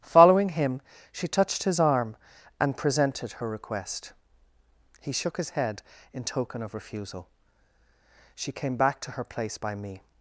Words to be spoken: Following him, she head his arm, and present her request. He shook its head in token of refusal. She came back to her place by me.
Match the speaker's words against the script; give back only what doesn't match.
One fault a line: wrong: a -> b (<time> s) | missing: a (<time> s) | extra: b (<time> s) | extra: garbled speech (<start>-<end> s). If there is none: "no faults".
wrong: head -> touched (1.3 s)
wrong: present -> presented (2.8 s)
wrong: its -> his (5.4 s)